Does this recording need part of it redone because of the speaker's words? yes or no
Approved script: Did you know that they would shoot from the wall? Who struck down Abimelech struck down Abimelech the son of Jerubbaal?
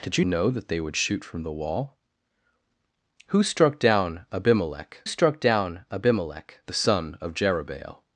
no